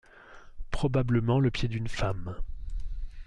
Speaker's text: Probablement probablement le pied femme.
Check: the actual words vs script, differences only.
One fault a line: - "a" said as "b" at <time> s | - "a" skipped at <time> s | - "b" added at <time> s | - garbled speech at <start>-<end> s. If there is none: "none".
- "probablement" skipped at 1.4 s
- "d'une" added at 1.7 s